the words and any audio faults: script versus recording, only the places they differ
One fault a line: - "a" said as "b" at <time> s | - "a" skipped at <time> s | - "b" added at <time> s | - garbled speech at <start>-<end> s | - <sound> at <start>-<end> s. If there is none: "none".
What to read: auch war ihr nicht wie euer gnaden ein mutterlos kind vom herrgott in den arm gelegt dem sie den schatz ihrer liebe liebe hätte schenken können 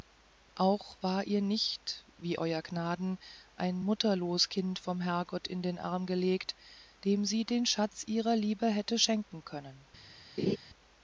- "liebe" skipped at 8.7 s
- laugh at 10.4-10.6 s